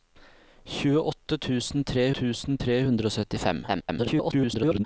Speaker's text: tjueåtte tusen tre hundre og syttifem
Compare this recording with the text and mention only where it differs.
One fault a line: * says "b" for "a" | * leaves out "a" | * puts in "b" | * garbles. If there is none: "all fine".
* puts in "tusen tre"
* garbles